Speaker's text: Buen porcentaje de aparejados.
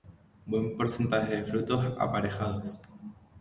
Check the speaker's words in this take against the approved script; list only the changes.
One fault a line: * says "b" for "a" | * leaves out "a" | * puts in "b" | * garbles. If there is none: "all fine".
* puts in "frutos"